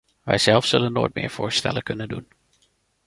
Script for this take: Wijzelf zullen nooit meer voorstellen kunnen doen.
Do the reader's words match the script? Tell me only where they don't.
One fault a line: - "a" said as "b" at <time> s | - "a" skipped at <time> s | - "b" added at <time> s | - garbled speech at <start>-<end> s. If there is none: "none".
none